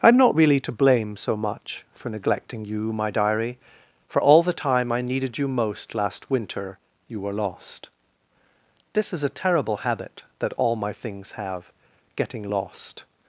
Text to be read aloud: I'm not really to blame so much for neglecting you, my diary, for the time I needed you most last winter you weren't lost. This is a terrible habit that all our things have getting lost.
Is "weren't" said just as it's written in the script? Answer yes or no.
no